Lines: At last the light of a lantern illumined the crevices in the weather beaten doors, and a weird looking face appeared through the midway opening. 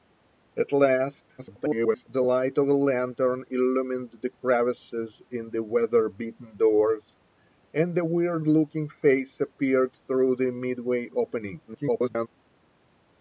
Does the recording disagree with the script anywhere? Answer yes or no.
yes